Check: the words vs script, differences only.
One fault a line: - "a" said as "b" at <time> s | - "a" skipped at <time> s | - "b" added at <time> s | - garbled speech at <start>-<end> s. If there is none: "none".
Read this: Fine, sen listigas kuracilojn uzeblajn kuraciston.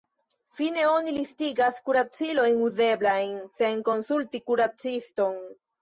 - "sen" said as "oni" at 0.9 s
- "sen konsulti" added at 3.6 s